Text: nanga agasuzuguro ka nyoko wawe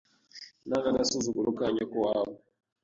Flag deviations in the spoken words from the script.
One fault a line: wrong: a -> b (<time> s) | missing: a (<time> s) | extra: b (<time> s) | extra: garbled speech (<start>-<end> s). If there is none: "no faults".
no faults